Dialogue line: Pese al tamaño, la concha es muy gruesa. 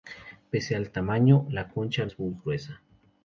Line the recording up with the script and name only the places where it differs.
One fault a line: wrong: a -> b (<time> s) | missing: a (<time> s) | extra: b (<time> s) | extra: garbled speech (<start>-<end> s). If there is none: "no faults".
no faults